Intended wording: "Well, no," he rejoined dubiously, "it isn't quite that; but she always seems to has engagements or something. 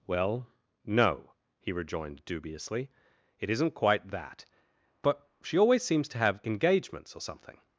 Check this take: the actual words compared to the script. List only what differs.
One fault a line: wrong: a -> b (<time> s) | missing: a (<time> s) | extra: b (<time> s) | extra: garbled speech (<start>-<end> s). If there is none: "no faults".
wrong: has -> have (6.2 s)